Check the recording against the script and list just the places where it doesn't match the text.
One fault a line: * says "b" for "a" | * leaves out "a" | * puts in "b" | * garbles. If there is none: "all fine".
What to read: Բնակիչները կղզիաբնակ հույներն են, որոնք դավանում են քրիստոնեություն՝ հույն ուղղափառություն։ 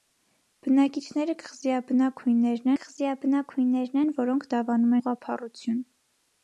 * puts in "կղզիաբնակ հույներն"
* leaves out "են քրիստոնեություն հույն"